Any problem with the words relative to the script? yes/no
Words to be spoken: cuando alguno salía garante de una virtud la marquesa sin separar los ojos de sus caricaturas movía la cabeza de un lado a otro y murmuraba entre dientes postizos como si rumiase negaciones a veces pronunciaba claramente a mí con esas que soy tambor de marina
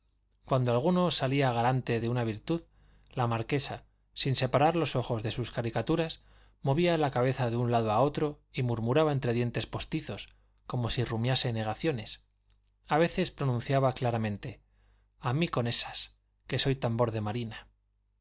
no